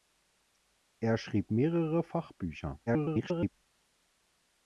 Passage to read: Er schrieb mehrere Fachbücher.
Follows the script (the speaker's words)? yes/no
no